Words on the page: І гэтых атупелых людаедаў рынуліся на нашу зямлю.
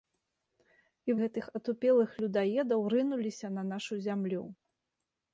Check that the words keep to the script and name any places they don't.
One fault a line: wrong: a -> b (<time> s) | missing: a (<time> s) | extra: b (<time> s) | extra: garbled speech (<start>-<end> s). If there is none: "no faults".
no faults